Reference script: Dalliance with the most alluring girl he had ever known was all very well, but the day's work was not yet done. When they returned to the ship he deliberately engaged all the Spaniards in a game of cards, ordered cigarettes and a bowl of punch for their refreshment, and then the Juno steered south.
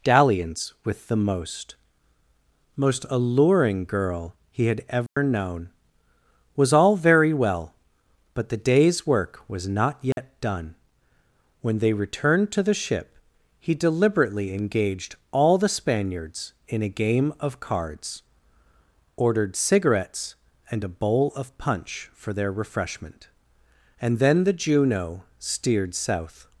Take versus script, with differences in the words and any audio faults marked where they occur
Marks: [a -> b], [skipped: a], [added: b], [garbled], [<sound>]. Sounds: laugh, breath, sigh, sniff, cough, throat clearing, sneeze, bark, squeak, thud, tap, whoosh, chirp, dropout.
Dalliance with the most [added: most] alluring girl he had ever [dropout] known was all very well, but the day's work was not yet [dropout] done. When they returned to the ship he deliberately engaged all the Spaniards in a game of cards, ordered cigarettes and a bowl of punch for their refreshment, and then the Juno steered south.